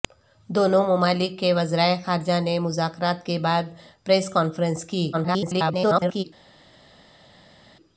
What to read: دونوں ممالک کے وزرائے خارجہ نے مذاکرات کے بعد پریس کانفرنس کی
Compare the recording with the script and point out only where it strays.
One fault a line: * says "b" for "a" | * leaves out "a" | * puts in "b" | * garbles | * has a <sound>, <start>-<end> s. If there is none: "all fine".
* garbles